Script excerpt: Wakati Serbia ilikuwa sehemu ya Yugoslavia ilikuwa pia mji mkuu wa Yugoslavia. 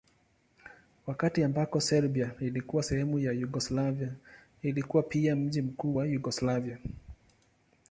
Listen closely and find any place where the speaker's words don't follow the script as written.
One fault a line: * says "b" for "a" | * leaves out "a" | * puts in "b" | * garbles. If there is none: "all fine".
* puts in "ambako"